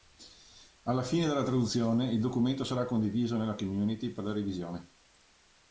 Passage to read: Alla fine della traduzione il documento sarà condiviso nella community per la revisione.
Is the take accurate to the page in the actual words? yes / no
yes